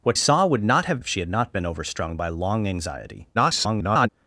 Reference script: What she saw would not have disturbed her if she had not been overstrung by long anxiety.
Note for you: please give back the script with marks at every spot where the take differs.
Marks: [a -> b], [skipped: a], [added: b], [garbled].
What [skipped: she] saw would not have [skipped: disturbed her] if she had not been overstrung by long anxiety. [garbled]